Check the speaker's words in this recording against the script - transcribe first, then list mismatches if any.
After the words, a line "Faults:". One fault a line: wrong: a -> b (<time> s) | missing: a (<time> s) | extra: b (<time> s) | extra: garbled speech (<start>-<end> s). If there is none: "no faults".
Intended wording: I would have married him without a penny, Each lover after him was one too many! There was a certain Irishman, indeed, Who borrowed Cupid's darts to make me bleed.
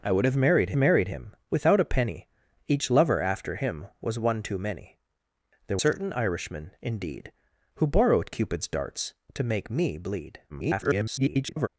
I would have married married him without a penny, Each lover after him was one too many! There certain Irishman, indeed, Who borrowed Cupid's darts to make me bleed. [garbled]
Faults:
extra: married (0.8 s)
missing: was a (5.8 s)
extra: garbled speech (10.5-11.7 s)